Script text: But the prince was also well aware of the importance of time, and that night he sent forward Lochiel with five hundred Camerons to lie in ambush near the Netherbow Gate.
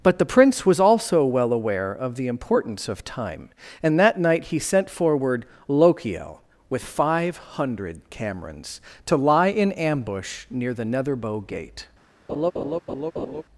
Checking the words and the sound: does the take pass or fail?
fail